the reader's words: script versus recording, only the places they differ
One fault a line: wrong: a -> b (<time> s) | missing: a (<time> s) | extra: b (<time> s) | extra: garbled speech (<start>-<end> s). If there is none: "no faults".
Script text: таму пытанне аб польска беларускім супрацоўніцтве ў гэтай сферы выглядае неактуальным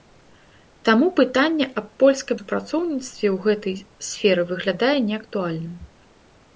missing: беларускім (2.4 s)